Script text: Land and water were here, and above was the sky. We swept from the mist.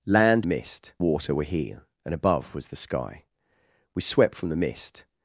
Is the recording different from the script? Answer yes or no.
yes